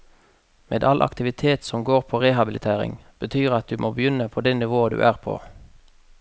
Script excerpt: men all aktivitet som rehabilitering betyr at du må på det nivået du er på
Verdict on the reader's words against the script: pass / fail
fail